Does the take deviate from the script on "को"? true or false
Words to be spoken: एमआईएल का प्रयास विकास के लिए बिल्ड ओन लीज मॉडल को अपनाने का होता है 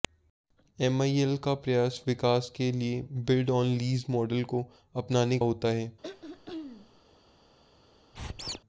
false